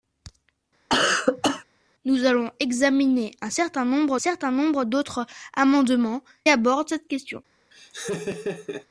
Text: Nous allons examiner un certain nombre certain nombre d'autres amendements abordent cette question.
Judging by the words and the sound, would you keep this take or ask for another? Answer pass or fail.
fail